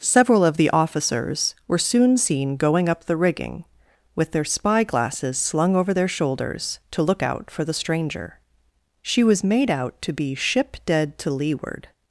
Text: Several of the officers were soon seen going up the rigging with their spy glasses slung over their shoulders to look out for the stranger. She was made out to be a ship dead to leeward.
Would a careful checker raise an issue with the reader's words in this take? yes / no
yes